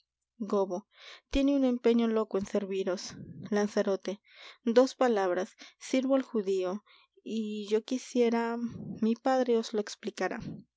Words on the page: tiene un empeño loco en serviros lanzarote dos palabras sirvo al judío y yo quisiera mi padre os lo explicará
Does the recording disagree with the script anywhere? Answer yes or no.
no